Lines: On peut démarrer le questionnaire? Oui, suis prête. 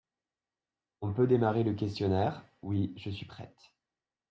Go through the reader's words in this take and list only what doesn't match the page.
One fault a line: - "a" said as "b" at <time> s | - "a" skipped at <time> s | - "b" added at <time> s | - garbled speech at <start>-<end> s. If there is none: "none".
- "je" added at 3.0 s